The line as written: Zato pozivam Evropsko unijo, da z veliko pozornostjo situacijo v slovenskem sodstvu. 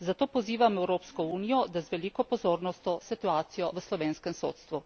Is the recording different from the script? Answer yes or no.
no